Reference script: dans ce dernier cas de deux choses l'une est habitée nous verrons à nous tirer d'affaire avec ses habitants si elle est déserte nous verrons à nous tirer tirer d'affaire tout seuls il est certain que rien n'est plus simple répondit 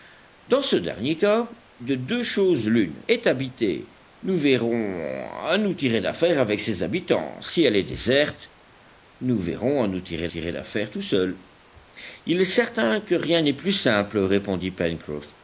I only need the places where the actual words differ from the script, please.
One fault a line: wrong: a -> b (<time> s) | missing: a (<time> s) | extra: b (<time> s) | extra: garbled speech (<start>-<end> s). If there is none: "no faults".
no faults